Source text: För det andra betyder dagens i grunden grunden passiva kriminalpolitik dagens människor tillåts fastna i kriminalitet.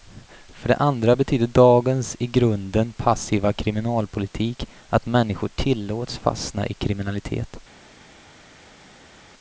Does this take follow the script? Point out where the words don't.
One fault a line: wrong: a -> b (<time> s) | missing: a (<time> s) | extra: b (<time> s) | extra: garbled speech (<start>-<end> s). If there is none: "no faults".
missing: grunden (2.9 s)
wrong: dagens -> att (4.9 s)